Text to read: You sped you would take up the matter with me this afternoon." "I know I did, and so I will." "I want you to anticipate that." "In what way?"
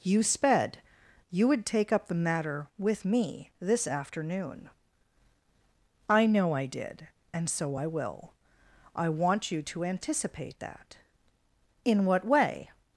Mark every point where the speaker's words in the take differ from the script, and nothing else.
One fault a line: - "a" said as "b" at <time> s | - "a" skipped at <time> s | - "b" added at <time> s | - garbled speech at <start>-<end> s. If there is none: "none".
none